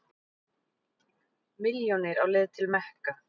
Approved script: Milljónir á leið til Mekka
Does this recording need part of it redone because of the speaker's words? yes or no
no